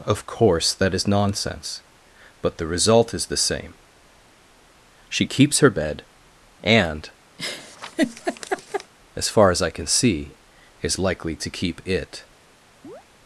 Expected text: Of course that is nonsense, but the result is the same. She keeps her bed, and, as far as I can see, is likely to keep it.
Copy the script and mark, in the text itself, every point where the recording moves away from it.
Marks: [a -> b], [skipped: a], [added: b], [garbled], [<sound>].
Of course that is nonsense, but the result is the same. She keeps her bed, and, [laugh] as far as I can see, is likely to keep it. [chirp]